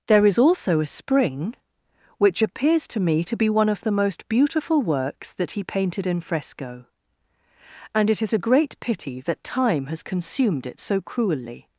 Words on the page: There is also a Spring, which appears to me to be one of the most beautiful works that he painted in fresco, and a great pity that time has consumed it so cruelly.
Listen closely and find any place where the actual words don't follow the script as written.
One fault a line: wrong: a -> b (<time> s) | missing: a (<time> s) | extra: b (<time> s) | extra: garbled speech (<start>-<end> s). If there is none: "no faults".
extra: it is (8.1 s)